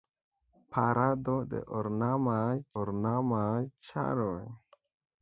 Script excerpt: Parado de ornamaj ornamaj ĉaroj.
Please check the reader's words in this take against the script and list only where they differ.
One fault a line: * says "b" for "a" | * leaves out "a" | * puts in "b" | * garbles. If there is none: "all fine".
all fine